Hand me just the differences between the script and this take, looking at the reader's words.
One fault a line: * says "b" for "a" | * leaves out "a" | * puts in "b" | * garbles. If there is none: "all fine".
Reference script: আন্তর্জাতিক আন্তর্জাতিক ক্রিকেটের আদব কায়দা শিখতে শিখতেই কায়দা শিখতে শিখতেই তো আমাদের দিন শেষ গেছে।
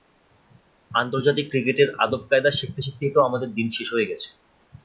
* leaves out "আন্তর্জাতিক"
* leaves out "কায়দা শিখতে শিখতেই"
* puts in "হয়ে"